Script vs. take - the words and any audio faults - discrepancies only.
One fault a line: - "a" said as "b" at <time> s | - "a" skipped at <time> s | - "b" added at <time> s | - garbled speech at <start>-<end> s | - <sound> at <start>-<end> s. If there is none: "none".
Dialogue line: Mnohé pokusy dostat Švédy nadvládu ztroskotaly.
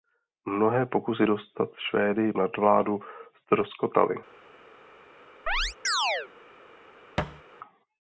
- chirp at 5.5-6.3 s
- thud at 7.2-7.4 s